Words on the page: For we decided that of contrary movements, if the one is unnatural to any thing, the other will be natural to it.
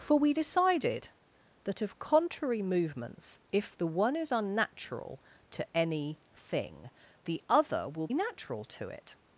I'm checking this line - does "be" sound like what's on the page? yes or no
no